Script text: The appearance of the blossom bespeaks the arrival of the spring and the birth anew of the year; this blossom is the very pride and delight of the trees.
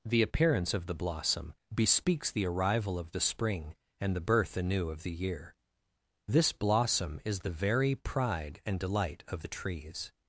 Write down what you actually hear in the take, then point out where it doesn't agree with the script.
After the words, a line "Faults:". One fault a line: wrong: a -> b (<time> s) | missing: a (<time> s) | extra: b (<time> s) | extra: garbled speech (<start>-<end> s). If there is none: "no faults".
The appearance of the blossom bespeaks the arrival of the spring and the birth anew of the year; this blossom is the very pride and delight of the trees.
Faults:
no faults